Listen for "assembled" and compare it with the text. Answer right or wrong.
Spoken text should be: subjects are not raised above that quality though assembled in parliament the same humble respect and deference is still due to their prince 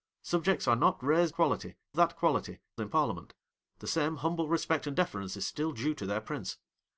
wrong